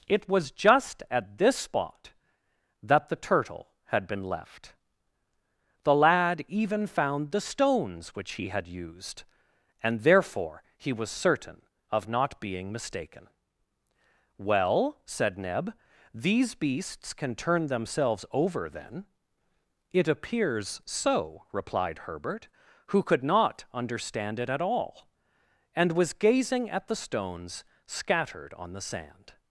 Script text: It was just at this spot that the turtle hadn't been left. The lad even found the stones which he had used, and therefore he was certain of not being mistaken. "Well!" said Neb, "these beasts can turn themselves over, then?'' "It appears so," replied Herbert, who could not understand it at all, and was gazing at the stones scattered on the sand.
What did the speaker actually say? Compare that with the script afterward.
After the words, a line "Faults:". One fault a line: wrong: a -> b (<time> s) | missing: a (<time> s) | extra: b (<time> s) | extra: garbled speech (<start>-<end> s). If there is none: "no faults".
It was just at this spot that the turtle had been left. The lad even found the stones which he had used, and therefore he was certain of not being mistaken. "Well!" said Neb, "these beasts can turn themselves over, then?'' "It appears so," replied Herbert, who could not understand it at all, and was gazing at the stones scattered on the sand.
Faults:
wrong: hadn't -> had (3.9 s)